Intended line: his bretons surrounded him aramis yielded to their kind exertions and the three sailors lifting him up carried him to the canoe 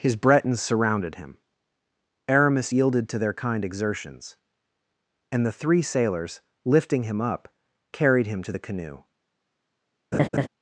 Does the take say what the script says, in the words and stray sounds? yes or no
no